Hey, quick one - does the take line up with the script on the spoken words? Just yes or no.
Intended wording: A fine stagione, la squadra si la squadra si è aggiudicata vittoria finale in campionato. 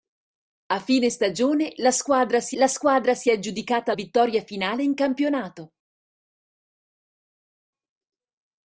yes